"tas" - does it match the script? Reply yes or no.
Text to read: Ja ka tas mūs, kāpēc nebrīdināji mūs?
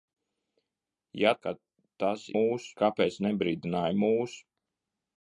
yes